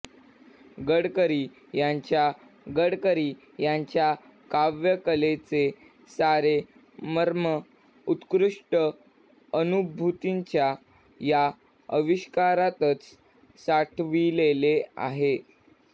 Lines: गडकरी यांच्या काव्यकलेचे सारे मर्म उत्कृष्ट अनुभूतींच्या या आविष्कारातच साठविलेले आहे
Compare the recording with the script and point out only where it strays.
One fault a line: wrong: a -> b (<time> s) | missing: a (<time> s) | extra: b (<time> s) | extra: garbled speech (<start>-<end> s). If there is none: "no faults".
extra: गडकरी यांच्या (2.7 s)